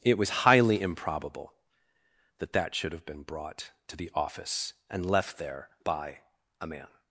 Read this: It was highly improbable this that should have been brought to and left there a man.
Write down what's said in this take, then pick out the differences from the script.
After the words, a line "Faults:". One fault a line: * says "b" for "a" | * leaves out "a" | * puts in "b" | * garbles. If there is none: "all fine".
It was highly improbable that that should have been brought to the office and left there by a man.
Faults:
* says "that" for "this"
* puts in "the office"
* puts in "by"